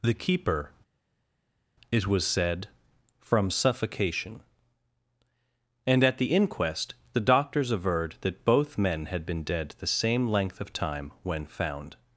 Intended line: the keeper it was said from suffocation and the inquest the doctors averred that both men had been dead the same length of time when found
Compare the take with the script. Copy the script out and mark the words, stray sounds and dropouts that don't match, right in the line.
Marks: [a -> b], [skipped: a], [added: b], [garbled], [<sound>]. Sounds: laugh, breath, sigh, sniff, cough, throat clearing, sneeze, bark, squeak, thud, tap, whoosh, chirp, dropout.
the keeper it was said from suffocation and [added: at] the inquest the doctors averred that both men had been dead the same length of time when found